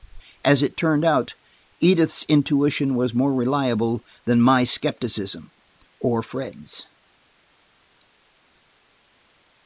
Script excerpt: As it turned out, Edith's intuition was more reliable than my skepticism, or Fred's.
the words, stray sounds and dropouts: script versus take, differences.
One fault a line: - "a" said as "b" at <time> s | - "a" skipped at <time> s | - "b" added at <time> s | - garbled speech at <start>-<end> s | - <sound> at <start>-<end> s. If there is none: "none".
none